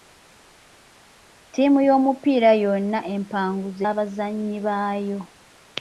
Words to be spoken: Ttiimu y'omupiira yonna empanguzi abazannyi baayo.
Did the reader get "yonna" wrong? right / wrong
right